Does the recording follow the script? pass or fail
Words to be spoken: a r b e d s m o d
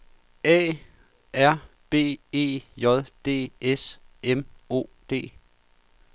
fail